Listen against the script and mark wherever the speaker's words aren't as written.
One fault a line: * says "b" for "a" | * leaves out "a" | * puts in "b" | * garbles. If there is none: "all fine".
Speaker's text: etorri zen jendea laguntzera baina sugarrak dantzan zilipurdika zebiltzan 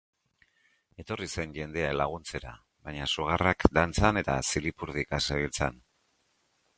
* puts in "eta"